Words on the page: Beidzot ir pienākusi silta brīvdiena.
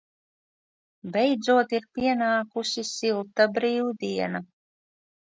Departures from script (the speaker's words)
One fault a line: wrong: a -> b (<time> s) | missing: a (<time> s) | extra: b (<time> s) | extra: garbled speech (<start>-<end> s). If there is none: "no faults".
no faults